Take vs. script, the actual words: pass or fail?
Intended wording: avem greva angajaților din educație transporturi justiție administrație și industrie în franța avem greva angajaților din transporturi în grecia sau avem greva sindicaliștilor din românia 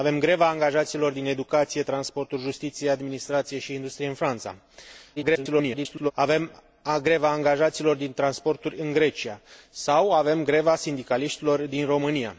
fail